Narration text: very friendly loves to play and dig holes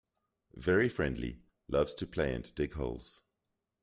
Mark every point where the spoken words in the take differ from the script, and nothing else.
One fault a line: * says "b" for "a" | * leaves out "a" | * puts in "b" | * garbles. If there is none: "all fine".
all fine